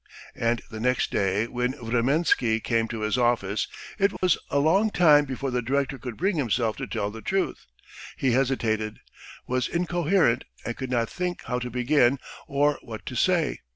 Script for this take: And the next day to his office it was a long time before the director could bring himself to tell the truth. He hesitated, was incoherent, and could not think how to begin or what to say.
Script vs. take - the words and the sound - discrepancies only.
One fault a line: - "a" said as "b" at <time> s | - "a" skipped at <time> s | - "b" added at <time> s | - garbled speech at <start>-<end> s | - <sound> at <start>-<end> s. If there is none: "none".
- "when Vremensky came" added at 1.4 s
- dropout at 4.2-4.2 s